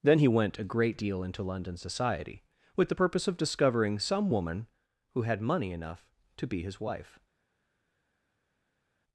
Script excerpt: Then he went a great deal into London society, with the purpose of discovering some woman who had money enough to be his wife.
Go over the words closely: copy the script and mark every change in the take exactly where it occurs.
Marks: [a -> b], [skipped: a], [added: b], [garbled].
Then he went a great deal into London society, with the purpose of discovering some woman who had money enough to be his wife.